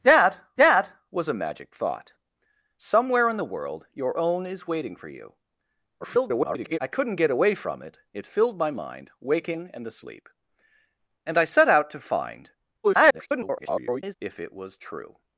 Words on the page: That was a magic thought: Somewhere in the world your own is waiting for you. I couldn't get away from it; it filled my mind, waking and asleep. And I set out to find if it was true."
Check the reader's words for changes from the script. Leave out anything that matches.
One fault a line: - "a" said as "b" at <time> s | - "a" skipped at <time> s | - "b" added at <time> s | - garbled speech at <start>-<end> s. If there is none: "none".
- "that" added at 0.6 s
- garbled speech at 6.0-6.8 s
- garbled speech at 12.8-14.1 s